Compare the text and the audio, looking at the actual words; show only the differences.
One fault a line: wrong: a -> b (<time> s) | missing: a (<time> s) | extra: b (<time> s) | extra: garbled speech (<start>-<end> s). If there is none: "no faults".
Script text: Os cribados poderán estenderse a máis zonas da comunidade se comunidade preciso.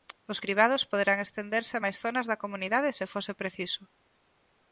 wrong: comunidade -> fose (3.1 s)